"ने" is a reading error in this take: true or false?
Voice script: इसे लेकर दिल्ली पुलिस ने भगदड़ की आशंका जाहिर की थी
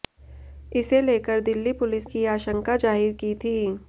true